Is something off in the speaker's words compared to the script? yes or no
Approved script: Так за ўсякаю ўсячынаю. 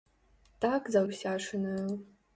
yes